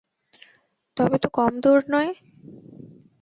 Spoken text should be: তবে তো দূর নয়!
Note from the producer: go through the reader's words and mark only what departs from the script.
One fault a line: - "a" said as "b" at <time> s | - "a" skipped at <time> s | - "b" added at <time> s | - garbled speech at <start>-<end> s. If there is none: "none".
- "কম" added at 1.4 s